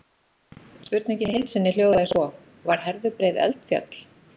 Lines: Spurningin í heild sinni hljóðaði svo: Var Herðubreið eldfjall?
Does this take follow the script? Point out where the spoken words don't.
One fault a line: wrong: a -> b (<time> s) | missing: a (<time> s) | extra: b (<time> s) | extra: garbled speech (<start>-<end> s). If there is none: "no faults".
no faults